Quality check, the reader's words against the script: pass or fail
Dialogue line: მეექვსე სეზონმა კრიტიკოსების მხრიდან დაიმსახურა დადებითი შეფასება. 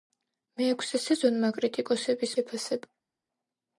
fail